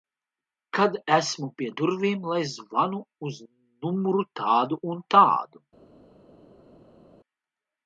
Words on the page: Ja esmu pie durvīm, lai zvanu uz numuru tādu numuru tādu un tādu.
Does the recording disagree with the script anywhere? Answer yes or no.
yes